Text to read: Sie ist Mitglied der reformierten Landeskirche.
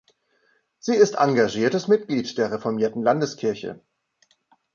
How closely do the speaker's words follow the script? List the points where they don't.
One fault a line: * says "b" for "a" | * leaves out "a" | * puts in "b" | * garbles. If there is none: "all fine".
* puts in "engagiertes"